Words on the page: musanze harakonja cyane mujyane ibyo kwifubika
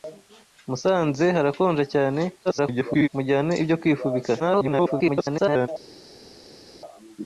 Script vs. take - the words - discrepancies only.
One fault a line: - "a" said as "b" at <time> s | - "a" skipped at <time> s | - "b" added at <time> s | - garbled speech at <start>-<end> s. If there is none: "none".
- garbled speech at 2.4-3.1 s
- garbled speech at 4.4-5.7 s